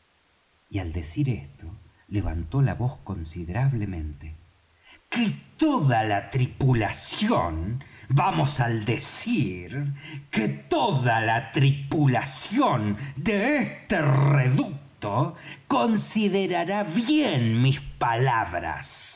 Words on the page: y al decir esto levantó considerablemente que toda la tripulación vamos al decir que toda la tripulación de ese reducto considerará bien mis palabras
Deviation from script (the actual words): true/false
true